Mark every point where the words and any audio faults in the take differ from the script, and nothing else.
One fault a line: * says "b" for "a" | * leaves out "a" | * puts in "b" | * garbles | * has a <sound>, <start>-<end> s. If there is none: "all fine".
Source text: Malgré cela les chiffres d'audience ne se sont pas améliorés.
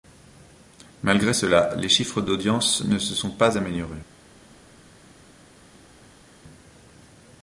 all fine